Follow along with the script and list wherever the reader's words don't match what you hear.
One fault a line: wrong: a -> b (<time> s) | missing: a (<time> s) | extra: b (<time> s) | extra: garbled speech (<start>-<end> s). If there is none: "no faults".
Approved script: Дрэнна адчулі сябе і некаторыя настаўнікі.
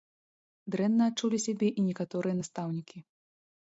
no faults